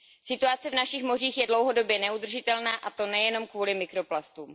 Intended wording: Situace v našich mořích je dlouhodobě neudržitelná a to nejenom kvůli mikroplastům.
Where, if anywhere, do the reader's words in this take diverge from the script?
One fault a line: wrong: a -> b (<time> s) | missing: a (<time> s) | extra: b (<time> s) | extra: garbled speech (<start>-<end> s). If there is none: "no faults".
no faults